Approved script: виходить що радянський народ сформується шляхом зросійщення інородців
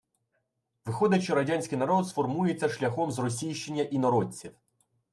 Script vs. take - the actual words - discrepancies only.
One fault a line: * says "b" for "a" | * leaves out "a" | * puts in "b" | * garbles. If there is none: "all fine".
all fine